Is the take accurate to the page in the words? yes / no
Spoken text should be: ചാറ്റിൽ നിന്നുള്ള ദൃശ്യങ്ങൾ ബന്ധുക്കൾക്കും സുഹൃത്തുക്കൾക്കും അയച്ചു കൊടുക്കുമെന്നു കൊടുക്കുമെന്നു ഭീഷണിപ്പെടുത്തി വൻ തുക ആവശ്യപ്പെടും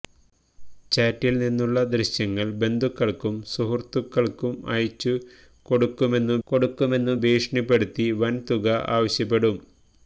yes